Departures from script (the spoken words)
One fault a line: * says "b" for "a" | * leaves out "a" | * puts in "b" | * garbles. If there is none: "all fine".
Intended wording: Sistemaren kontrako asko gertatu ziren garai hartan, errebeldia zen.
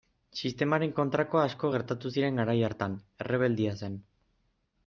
all fine